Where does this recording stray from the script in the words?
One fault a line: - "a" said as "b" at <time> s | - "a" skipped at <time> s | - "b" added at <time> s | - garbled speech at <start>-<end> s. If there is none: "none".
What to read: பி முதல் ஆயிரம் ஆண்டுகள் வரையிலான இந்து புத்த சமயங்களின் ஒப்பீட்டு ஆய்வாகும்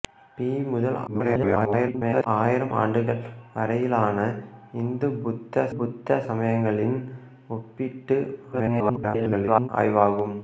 - garbled speech at 1.1-2.3 s
- "புத்த" added at 5.7 s
- garbled speech at 8.5-9.7 s